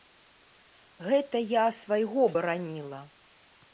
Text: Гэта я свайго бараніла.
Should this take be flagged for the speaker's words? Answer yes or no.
no